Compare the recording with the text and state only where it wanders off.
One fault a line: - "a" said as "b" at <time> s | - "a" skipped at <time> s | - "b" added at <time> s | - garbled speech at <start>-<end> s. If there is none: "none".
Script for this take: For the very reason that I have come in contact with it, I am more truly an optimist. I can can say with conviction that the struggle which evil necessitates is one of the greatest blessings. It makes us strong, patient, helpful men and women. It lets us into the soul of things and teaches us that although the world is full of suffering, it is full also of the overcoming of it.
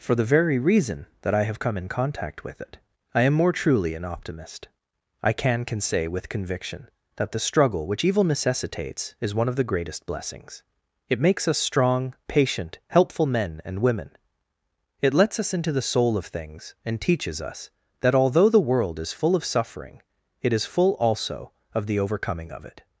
none